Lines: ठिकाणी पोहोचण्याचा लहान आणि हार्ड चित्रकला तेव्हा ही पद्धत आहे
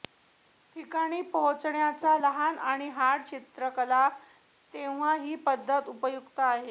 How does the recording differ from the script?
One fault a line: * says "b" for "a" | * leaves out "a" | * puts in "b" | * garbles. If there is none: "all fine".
* puts in "उपयुक्त"